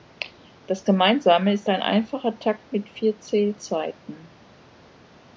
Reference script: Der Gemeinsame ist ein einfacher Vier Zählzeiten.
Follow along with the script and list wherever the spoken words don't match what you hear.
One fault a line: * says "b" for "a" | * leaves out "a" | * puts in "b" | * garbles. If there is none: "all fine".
* says "Das" for "Der"
* puts in "Takt mit"